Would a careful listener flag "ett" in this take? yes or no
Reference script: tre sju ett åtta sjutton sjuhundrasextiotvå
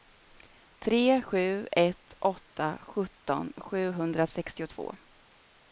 no